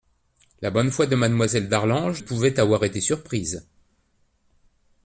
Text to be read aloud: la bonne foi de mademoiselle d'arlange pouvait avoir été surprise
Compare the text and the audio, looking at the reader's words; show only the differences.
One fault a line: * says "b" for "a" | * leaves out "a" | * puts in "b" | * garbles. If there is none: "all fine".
all fine